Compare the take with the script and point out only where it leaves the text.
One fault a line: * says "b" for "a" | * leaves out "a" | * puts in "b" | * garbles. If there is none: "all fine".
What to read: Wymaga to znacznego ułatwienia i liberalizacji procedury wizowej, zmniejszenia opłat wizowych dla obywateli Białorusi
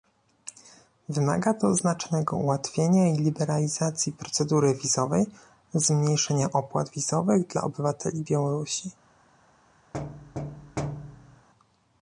all fine